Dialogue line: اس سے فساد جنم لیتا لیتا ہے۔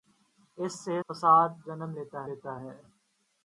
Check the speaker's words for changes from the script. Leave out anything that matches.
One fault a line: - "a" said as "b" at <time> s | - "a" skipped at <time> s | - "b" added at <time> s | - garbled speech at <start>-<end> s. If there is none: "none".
none